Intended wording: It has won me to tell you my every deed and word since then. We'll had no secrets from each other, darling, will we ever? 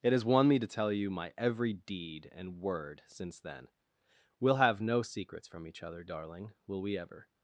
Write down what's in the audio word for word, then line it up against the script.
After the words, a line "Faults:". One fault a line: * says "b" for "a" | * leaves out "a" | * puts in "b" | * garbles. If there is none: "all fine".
It has won me to tell you my every deed and word since then. We'll have no secrets from each other, darling, will we ever?
Faults:
* says "have" for "had"